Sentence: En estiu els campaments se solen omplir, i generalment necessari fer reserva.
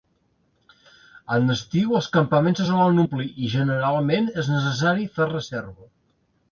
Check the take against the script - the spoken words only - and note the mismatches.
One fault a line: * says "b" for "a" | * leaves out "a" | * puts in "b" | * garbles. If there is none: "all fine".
* puts in "és"